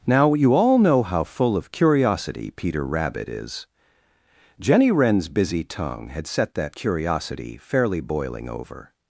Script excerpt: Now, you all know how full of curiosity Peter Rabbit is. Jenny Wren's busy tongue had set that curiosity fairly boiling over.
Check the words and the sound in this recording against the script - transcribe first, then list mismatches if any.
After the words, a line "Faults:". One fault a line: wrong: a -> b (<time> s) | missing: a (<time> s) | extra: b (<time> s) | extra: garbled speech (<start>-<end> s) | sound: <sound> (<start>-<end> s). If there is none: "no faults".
Now, you all know how full of curiosity Peter Rabbit is. Jenny Wren's busy tongue had set that curiosity fairly boiling over.
Faults:
no faults